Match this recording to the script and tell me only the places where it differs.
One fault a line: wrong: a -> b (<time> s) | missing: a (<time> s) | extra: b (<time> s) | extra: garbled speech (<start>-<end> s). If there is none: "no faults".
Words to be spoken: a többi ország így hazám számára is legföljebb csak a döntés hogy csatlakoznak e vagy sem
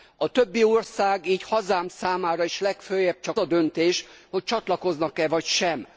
no faults